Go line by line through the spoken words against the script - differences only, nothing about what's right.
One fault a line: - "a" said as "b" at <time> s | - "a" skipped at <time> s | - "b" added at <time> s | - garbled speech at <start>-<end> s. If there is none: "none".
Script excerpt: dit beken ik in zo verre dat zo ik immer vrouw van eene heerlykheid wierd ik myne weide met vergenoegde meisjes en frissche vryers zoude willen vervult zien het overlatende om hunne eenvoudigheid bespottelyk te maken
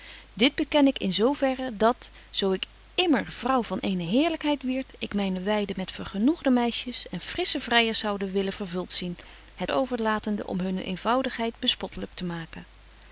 none